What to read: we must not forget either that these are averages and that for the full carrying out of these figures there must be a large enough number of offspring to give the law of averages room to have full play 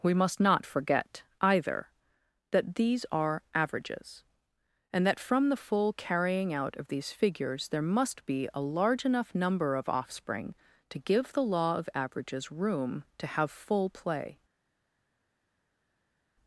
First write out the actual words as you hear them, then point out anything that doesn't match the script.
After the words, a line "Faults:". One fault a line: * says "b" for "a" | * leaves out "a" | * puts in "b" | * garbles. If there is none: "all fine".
we must not forget either that these are averages and that from the full carrying out of these figures there must be a large enough number of offspring to give the law of averages room to have full play
Faults:
* says "from" for "for"